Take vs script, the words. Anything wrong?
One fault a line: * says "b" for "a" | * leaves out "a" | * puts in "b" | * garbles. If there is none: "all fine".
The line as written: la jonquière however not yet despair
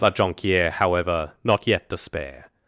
all fine